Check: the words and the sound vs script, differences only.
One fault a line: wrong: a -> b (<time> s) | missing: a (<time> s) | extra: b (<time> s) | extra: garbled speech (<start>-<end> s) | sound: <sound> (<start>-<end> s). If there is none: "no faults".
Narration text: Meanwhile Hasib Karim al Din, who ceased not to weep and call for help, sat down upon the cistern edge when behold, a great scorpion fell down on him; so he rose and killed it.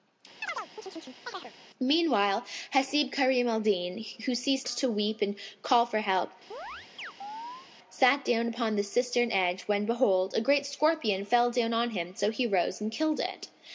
sound: chirp (0.4-1.5 s)
missing: not (4.7 s)
sound: chirp (6.5-7.7 s)